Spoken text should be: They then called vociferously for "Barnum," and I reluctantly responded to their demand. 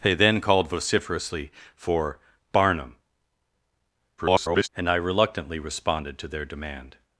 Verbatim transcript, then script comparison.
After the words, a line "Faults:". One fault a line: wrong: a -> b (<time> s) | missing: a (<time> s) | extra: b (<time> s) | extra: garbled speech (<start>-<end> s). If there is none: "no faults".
They then called vociferously for "Barnum," [garbled] and I reluctantly responded to their demand.
Faults:
extra: garbled speech (4.2-4.7 s)